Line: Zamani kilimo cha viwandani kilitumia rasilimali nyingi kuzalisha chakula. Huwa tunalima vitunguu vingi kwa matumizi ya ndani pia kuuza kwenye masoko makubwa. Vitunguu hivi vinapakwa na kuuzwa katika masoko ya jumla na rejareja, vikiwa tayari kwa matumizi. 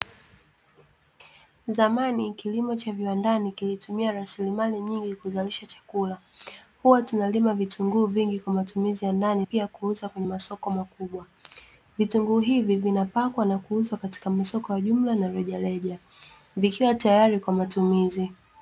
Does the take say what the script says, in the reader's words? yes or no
yes